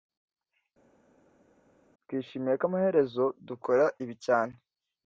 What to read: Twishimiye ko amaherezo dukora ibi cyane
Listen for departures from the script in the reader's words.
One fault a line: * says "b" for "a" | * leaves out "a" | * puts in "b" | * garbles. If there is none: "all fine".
all fine